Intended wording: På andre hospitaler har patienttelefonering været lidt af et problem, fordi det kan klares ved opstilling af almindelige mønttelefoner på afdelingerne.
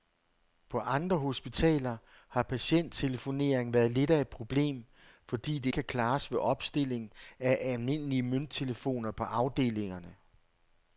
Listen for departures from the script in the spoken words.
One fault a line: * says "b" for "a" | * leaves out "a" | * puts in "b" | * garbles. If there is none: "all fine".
all fine